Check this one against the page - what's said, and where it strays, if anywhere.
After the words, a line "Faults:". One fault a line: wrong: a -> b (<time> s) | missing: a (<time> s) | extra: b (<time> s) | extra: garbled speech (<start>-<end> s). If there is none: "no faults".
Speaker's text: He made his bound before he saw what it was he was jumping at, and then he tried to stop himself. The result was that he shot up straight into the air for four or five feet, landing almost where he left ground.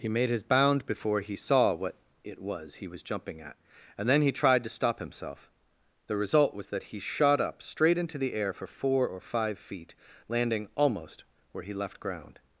He made his bound before he saw what it was he was jumping at, and then he tried to stop himself. The result was that he shot up straight into the air for four or five feet, landing almost where he left ground.
Faults:
no faults